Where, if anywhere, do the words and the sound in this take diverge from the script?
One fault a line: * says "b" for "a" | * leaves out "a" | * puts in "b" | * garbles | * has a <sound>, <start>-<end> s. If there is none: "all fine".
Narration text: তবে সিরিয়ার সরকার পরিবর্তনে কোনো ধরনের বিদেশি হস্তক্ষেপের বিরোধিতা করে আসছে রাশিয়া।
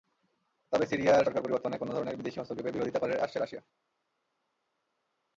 all fine